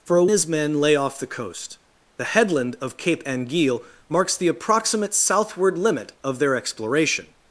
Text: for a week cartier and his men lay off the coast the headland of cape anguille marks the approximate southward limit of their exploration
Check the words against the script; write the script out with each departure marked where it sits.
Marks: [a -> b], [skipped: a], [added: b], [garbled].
for a [skipped: week cartier and] his men lay off the coast the headland of cape anguille marks the approximate southward limit of their exploration